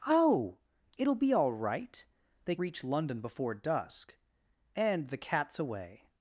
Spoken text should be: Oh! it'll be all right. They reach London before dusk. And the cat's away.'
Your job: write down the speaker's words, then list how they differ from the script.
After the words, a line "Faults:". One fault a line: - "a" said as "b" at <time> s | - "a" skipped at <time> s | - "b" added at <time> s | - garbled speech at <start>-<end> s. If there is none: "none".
Oh! it'll be all right. They reach London before dusk. And the cat's away.'
Faults:
none